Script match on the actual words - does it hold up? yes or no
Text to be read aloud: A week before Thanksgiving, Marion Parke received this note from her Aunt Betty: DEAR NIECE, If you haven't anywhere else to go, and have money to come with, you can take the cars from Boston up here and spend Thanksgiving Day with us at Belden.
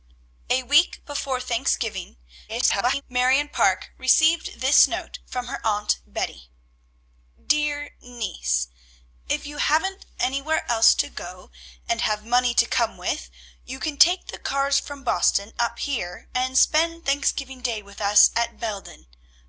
no